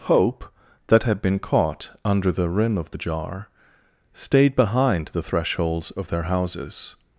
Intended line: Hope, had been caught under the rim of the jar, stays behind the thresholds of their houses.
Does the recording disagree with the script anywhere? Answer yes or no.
yes